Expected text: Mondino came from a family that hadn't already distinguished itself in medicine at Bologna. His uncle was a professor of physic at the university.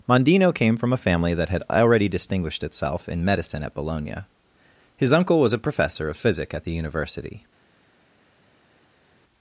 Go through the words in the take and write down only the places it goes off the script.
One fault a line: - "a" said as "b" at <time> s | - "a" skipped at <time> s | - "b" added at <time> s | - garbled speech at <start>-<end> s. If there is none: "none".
- "hadn't" said as "had" at 1.5 s